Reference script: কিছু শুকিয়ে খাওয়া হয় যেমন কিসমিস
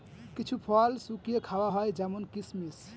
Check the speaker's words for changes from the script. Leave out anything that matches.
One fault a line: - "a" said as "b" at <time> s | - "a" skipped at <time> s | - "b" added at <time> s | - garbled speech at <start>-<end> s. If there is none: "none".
- "ফল" added at 0.7 s